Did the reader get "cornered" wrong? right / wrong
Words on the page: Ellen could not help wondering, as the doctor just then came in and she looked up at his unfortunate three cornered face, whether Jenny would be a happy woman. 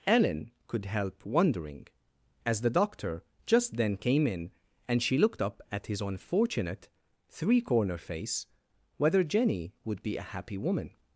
wrong